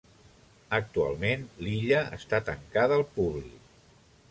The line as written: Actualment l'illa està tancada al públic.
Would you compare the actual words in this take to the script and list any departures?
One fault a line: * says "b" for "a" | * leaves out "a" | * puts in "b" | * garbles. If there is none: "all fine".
all fine